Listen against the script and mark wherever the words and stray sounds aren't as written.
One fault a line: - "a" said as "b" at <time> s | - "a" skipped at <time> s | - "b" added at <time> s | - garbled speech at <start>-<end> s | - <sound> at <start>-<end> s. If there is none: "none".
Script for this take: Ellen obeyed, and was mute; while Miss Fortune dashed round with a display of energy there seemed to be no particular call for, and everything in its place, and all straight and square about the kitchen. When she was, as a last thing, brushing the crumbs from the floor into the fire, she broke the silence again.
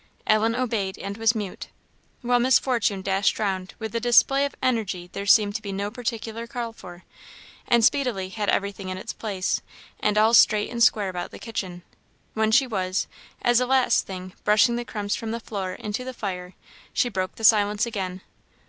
- "speedily had" added at 7.8 s